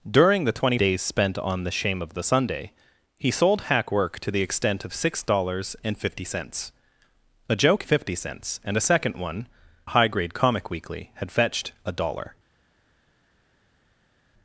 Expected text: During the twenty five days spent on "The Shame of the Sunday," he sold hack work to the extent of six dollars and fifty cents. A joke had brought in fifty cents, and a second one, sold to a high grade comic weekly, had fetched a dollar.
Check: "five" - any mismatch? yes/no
yes